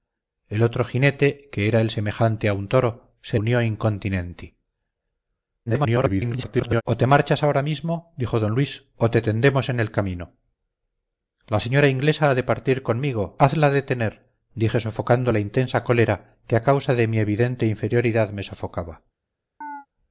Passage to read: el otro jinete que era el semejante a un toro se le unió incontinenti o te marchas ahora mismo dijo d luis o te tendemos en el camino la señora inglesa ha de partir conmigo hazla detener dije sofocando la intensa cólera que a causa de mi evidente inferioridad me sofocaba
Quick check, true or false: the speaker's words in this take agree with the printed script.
false